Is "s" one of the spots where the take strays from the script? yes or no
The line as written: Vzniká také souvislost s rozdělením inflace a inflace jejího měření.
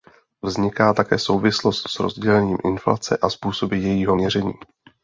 no